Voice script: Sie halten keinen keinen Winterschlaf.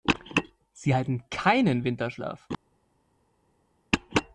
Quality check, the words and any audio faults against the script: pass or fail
fail